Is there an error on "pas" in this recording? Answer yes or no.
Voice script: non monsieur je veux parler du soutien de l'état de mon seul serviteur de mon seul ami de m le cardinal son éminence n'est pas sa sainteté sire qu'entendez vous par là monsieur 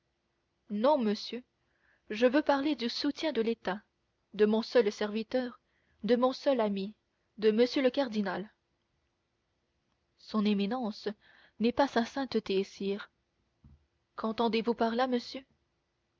no